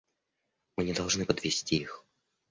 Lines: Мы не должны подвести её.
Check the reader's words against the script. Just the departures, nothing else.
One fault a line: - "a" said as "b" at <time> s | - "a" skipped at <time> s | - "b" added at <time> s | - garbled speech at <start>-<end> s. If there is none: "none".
- "её" said as "их" at 1.7 s